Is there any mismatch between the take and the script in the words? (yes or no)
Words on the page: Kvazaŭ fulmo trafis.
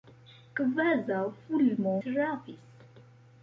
no